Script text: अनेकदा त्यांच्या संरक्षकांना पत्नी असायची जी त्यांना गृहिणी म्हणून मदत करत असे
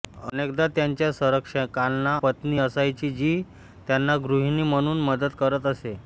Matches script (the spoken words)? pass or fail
pass